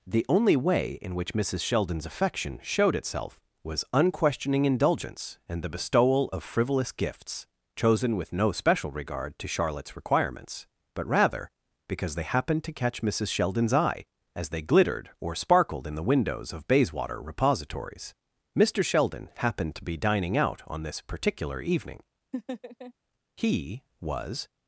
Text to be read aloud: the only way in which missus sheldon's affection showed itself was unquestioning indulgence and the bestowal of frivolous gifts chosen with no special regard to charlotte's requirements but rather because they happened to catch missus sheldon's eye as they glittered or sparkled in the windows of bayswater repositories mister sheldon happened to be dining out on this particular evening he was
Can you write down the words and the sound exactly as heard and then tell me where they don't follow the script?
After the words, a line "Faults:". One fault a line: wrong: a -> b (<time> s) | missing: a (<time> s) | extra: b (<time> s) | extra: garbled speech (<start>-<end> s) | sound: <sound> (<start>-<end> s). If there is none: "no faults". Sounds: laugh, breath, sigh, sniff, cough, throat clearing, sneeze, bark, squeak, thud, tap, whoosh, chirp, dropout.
the only way in which missus sheldon's affection showed itself was unquestioning indulgence and the bestowal of frivolous gifts chosen with no special regard to charlotte's requirements but rather because they happened to catch missus sheldon's eye as they glittered or sparkled in the windows of bayswater repositories mister sheldon happened to be dining out on this particular evening he was
Faults:
sound: laugh (22.3-22.9 s)